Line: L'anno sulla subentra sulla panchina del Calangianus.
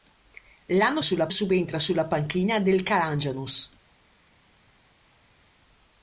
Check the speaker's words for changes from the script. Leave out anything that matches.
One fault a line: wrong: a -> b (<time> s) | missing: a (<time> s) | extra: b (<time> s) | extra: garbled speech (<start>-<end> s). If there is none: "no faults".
no faults